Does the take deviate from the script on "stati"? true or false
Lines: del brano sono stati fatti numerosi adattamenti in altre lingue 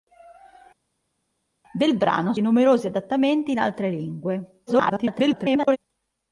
true